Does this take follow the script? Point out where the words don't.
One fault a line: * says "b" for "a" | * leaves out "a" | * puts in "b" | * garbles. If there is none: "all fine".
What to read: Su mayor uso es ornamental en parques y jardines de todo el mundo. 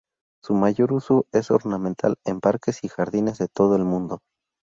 all fine